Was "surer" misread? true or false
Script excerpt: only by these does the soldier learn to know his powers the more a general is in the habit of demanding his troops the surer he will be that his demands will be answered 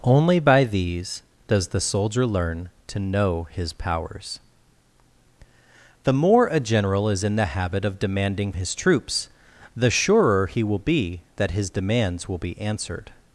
false